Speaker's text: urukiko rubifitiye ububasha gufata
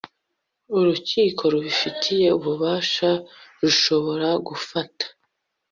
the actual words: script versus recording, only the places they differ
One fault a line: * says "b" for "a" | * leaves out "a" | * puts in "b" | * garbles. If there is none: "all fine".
* puts in "rushobora"